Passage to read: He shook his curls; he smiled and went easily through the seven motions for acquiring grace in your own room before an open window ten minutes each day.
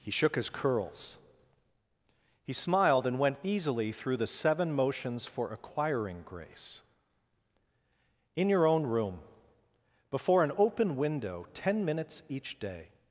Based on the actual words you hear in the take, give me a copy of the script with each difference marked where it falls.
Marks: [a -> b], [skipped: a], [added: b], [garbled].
He shook his curls; he smiled and went easily through the seven motions for acquiring grace in your own room before an open window ten minutes each day.